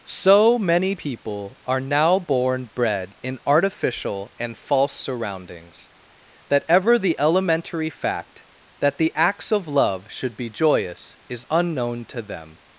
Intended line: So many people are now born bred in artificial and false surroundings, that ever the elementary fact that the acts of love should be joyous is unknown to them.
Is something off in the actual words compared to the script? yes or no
no